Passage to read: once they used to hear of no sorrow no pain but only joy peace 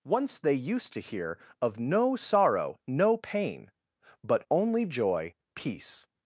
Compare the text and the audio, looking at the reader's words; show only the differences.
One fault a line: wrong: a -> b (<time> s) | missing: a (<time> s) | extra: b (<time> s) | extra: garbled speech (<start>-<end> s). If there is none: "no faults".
no faults